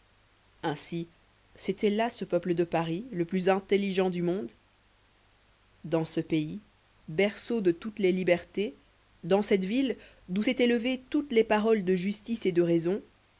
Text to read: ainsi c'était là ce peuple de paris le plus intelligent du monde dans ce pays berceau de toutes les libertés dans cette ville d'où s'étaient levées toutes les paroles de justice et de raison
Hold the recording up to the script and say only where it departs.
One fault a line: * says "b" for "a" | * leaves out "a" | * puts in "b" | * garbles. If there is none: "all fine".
all fine